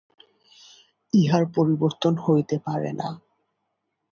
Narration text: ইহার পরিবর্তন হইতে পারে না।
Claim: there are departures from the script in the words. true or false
false